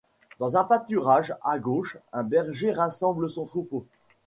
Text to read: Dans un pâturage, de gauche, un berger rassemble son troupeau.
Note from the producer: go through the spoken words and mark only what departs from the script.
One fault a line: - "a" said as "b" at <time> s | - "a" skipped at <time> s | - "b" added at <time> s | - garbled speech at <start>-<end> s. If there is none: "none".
- "de" said as "à" at 1.4 s